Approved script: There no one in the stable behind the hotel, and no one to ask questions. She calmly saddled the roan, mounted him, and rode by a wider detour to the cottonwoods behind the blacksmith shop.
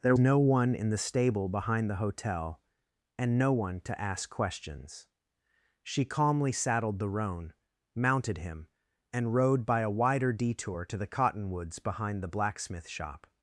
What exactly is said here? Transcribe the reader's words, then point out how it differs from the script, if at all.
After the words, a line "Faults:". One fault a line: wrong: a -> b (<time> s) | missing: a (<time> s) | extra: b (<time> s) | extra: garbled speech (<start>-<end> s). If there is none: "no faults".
There no one in the stable behind the hotel, and no one to ask questions. She calmly saddled the roan, mounted him, and rode by a wider detour to the cottonwoods behind the blacksmith shop.
Faults:
no faults